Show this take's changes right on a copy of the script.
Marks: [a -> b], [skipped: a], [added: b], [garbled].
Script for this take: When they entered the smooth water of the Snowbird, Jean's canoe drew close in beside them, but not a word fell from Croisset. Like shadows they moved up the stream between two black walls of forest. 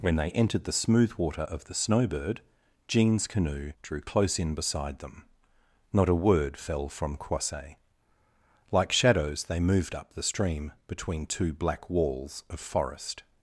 When they entered the smooth water of the Snowbird, Jean's canoe drew close in beside them, [skipped: but] not a word fell from Croisset. Like shadows they moved up the stream between two black walls of forest.